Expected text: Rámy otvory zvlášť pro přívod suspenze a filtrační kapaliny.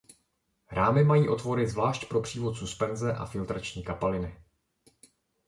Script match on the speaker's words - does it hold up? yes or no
no